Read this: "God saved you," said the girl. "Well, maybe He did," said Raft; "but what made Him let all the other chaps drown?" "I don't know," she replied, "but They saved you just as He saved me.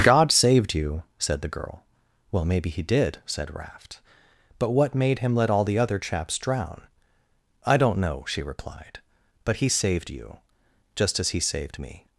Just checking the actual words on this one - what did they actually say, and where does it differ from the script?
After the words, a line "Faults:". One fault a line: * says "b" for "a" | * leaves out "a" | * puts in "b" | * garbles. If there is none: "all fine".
"God saved you," said the girl. "Well, maybe He did," said Raft; "but what made Him let all the other chaps drown?" "I don't know," she replied, "but He saved you just as He saved me.
Faults:
* says "He" for "They"